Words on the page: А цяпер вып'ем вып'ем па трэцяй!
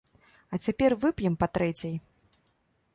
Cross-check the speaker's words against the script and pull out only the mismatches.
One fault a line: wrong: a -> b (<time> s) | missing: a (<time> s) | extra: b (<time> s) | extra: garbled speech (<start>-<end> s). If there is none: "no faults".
missing: вып'ем (1.4 s)